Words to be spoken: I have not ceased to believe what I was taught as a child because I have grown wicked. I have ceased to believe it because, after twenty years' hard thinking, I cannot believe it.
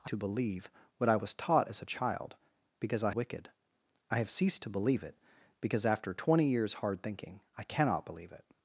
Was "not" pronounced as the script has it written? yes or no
no